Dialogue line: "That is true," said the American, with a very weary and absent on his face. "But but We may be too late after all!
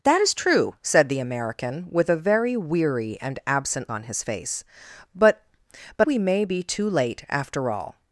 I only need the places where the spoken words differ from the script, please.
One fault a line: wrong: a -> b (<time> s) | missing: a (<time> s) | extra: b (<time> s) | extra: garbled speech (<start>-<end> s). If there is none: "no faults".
no faults